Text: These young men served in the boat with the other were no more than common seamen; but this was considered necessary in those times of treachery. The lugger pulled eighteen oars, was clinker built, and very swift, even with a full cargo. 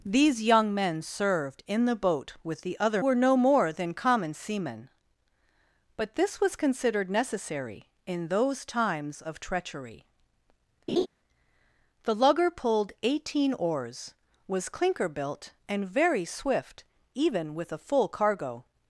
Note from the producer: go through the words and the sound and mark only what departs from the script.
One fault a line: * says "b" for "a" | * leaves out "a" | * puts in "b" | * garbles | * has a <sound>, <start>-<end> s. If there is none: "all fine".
* has a laugh, 10.9-11.1 s